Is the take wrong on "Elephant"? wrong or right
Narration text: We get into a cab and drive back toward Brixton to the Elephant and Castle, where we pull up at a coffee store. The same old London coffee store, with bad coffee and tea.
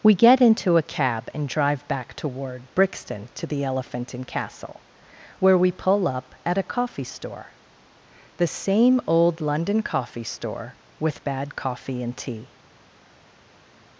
right